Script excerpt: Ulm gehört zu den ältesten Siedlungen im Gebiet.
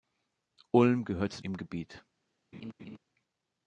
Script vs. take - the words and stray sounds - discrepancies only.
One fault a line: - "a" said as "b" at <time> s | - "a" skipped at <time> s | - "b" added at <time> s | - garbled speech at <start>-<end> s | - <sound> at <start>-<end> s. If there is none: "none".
- "den ältesten Siedlungen" skipped at 1.4 s
- laugh at 2.5-3.0 s